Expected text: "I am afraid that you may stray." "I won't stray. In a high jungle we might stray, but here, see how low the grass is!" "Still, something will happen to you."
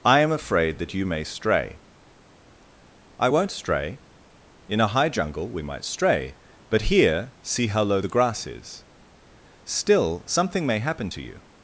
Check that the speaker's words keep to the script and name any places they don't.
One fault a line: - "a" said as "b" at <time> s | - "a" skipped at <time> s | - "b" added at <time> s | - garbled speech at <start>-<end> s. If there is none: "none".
- "will" said as "may" at 10.7 s